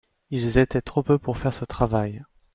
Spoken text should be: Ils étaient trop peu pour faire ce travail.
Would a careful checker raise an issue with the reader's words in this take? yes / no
no